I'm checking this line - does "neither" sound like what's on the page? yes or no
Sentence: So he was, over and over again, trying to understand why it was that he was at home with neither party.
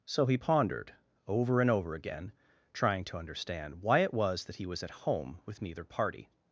yes